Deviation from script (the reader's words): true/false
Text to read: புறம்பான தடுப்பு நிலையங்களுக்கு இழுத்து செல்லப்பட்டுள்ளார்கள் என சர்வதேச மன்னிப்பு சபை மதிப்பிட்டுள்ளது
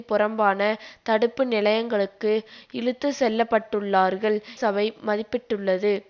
true